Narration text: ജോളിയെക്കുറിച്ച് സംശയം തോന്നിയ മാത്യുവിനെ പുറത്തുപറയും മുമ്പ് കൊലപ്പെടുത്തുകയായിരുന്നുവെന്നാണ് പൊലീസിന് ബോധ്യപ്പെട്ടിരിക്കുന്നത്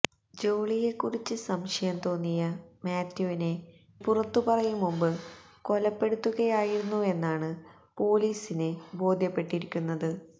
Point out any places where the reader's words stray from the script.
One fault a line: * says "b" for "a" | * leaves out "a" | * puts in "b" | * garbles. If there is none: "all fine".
all fine